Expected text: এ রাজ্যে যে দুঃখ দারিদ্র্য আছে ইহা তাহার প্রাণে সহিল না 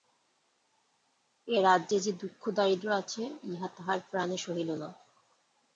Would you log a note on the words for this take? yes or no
no